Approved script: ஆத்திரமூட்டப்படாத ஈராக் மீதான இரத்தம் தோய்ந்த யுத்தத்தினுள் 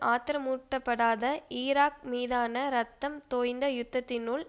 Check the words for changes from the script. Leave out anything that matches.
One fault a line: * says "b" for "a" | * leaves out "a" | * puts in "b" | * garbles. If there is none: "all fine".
all fine